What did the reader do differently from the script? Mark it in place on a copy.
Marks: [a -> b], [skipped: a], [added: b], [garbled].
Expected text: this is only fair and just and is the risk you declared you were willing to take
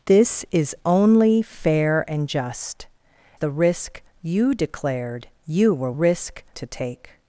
this is only fair and just [skipped: and is] the risk you declared you were [willing -> risk] to take